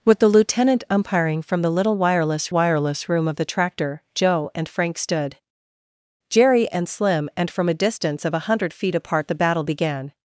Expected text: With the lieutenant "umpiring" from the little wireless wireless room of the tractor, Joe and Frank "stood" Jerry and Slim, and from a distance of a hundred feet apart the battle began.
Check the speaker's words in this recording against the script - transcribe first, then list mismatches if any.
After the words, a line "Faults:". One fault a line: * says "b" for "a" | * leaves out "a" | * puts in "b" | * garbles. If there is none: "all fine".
With the lieutenant "umpiring" from the little wireless wireless room of the tractor, Joe and Frank "stood" Jerry and Slim, and from a distance of a hundred feet apart the battle began.
Faults:
all fine